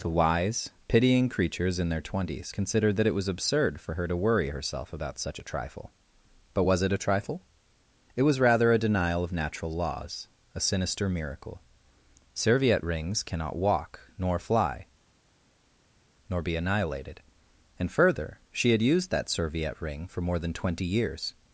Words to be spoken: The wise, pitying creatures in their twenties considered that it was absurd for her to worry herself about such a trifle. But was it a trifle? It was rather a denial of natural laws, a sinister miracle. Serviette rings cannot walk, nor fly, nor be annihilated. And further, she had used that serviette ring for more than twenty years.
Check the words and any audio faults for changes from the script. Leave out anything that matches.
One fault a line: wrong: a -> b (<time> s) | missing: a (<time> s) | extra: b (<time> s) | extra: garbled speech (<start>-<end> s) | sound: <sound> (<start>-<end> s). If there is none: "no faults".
no faults